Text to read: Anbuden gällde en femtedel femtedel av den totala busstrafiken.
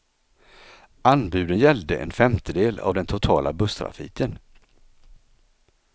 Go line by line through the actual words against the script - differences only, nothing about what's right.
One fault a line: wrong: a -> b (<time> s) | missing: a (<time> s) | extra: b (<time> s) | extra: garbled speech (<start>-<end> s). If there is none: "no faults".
missing: femtedel (2.8 s)